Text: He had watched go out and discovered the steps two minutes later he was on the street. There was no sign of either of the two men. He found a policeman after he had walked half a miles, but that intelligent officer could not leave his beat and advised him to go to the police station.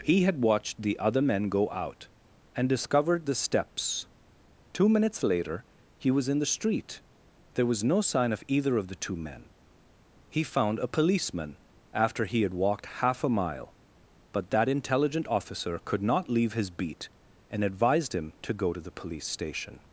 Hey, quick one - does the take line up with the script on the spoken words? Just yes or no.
no